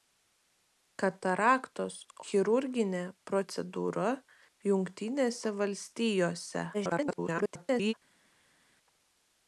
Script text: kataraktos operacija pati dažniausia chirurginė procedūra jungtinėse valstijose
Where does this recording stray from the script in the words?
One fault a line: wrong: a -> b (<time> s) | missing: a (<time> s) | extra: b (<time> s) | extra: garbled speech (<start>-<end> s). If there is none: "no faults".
missing: operacija pati dažniausia (2.0 s)
extra: garbled speech (6.7-7.9 s)